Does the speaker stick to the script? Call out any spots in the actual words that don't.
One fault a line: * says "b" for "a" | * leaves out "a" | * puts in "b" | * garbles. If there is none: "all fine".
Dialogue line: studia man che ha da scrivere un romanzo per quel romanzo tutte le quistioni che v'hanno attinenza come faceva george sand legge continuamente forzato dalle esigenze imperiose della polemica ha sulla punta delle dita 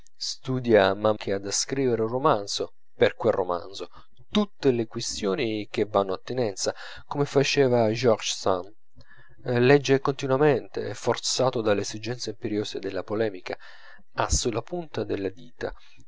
all fine